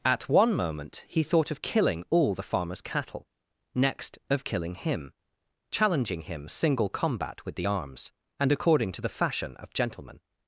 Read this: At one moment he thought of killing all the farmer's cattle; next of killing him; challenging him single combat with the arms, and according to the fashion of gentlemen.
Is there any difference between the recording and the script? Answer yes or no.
no